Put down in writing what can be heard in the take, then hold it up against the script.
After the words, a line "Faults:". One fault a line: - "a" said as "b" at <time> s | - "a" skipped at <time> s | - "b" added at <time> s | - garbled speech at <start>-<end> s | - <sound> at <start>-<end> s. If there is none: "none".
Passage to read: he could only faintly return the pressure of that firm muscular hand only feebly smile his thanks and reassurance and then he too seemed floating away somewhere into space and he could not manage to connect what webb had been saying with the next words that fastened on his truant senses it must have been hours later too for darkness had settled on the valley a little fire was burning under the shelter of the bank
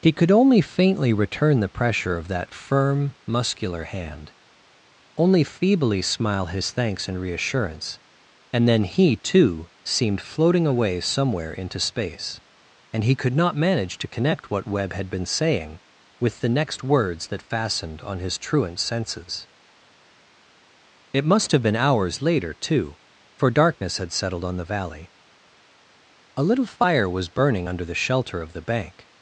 he could only faintly return the pressure of that firm muscular hand only feebly smile his thanks and reassurance and then he too seemed floating away somewhere into space and he could not manage to connect what webb had been saying with the next words that fastened on his truant senses it must have been hours later too for darkness had settled on the valley a little fire was burning under the shelter of the bank
Faults:
none